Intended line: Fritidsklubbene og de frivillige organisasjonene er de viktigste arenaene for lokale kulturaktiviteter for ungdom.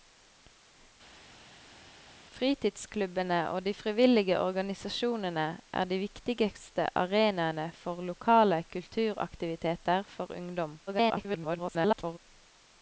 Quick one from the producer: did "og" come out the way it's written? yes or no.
yes